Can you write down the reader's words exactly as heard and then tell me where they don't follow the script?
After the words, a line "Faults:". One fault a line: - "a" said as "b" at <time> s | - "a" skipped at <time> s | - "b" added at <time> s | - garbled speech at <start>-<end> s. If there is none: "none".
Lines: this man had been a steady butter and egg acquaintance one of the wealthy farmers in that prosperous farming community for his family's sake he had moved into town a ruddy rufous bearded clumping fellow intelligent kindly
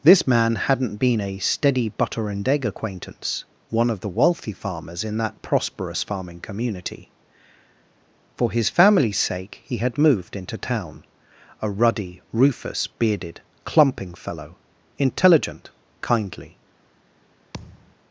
this man hadn't been a steady butter and egg acquaintance one of the wealthy farmers in that prosperous farming community for his family's sake he had moved into town a ruddy rufous bearded clumping fellow intelligent kindly
Faults:
- "had" said as "hadn't" at 0.6 s